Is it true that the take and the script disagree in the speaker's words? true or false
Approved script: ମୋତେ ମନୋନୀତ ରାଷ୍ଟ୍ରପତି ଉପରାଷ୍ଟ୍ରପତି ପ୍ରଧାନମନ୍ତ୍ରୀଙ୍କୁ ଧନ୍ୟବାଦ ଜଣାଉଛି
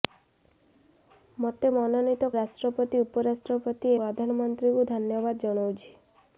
false